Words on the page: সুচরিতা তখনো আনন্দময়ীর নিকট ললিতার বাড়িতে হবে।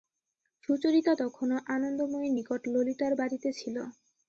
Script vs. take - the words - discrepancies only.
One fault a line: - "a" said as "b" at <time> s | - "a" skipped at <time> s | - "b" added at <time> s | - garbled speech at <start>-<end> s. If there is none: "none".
- "হবে" said as "ছিল" at 3.6 s